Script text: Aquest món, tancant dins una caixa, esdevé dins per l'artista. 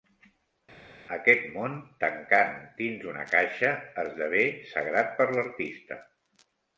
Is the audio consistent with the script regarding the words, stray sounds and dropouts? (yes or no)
no